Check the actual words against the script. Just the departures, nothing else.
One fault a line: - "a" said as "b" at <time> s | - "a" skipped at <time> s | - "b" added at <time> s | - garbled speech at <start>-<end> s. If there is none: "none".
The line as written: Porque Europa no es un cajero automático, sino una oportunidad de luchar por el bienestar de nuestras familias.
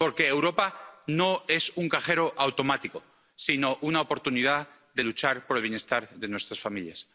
none